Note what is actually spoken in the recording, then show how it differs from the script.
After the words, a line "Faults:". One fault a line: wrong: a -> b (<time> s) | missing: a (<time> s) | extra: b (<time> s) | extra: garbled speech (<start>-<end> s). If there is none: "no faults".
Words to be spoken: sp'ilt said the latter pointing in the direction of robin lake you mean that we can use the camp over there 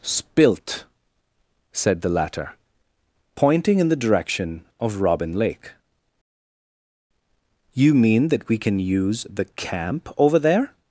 sp'ilt said the latter pointing in the direction of robin lake you mean that we can use the camp over there
Faults:
no faults